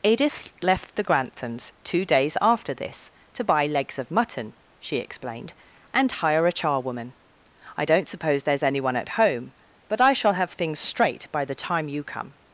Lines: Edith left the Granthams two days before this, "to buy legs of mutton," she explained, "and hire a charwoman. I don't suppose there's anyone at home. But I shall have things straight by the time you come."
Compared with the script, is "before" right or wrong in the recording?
wrong